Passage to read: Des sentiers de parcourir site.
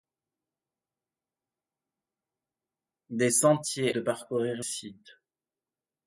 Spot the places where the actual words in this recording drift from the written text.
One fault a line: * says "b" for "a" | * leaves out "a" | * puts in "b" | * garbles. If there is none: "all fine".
all fine